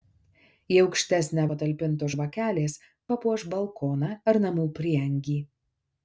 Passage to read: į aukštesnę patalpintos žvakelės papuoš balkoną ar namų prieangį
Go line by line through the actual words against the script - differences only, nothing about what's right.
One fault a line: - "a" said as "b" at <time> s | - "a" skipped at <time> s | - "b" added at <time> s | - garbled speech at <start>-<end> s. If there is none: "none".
none